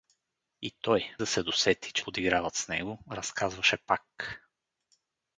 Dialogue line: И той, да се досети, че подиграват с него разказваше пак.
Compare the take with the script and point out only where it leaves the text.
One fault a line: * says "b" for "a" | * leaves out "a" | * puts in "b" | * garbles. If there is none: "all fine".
all fine